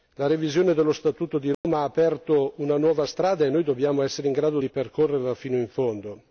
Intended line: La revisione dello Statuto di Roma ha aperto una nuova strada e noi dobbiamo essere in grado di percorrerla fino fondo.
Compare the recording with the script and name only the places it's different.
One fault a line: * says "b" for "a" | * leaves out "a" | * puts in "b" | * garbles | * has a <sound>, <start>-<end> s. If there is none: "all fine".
* has a dropout, 1.5-1.6 s
* puts in "in"